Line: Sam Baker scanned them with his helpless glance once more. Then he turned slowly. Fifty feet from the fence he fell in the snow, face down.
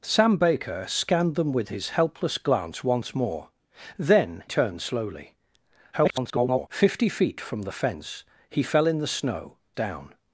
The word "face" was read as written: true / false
false